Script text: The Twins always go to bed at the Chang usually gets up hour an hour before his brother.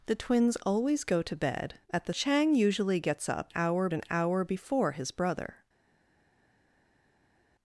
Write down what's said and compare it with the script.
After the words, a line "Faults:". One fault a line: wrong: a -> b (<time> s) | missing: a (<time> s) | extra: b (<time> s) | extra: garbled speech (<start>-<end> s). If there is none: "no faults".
The Twins always go to bed at the Chang usually gets up hour an hour before his brother.
Faults:
no faults